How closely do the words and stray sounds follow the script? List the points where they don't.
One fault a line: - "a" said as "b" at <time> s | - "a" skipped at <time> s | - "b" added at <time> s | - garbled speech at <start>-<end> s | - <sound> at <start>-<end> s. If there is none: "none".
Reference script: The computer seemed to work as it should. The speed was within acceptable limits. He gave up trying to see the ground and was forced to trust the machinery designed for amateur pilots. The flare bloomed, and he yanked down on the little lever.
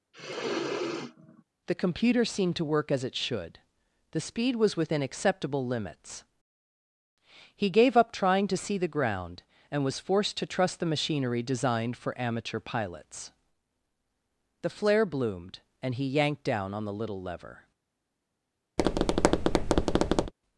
- sniff at 0.1-1.4 s
- tap at 18.8-20.3 s